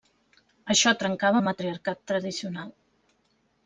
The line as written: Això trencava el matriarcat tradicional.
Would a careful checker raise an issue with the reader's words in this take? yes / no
no